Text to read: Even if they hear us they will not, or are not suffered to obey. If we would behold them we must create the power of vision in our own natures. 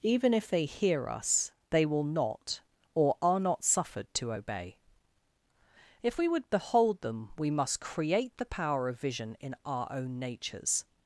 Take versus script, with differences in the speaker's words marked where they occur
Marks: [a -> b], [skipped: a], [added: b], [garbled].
Even if they hear us they will not, or are not suffered to obey. If we would behold them we must create the power of vision in our own natures.